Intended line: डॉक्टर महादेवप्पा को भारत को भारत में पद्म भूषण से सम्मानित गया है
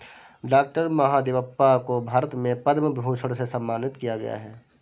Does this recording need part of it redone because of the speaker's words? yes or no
yes